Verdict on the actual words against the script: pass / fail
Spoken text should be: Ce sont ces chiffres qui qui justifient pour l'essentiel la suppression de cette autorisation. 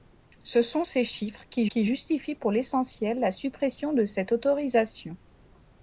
pass